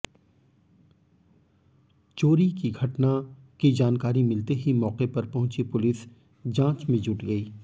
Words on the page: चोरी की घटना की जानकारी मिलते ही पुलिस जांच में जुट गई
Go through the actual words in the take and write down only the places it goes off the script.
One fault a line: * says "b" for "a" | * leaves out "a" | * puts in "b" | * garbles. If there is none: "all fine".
* puts in "मौके पर पहुंची"